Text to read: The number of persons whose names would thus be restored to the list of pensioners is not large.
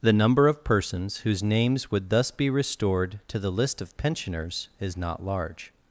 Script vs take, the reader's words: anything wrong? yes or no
no